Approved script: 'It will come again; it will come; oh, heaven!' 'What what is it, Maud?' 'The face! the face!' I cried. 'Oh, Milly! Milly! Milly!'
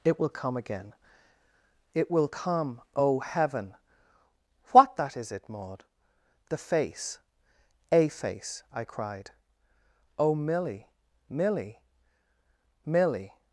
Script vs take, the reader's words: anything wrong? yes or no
yes